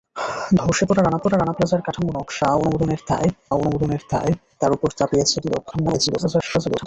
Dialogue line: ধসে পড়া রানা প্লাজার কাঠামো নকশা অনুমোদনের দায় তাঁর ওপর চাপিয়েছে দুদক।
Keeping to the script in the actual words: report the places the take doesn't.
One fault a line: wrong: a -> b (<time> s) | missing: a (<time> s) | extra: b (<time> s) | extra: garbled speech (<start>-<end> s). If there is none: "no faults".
extra: পড়া রানা (1.2 s)
extra: অনুমোদনের দায় (3.6 s)
extra: garbled speech (5.7-6.9 s)